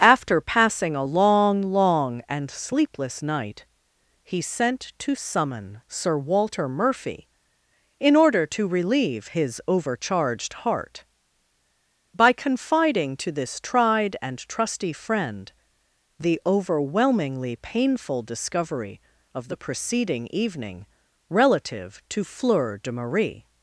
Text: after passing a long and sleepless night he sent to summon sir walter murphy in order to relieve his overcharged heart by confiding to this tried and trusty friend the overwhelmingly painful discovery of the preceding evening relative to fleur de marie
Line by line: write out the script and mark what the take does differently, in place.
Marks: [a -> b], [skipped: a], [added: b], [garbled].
after passing a long [added: long] and sleepless night he sent to summon sir walter murphy in order to relieve his overcharged heart by confiding to this tried and trusty friend the overwhelmingly painful discovery of the preceding evening relative to fleur de marie